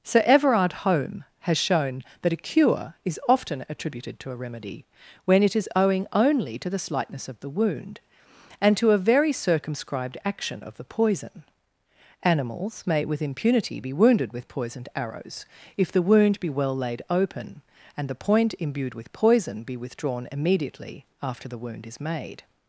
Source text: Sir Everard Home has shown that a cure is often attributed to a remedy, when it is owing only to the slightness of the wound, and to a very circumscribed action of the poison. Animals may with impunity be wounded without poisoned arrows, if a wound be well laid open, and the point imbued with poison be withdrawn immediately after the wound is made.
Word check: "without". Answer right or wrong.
wrong